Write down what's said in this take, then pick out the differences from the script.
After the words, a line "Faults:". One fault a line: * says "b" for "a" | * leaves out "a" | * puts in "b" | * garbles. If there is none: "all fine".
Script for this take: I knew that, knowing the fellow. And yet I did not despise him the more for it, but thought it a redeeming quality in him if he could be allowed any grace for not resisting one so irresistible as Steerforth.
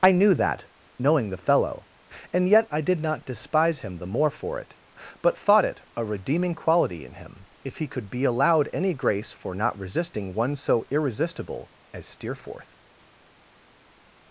I knew that, knowing the fellow. And yet I did not despise him the more for it, but thought it a redeeming quality in him if he could be allowed any grace for not resisting one so irresistible as Steerforth.
Faults:
all fine